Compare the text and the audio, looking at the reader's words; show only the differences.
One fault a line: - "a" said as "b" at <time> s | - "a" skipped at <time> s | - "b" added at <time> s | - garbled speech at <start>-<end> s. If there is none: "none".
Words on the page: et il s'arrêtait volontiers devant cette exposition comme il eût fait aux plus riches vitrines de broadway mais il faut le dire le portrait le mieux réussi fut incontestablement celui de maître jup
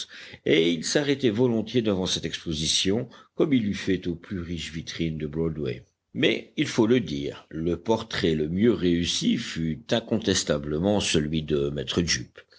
none